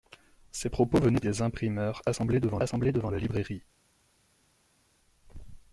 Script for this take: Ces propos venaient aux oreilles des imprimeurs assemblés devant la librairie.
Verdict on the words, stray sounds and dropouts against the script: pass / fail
fail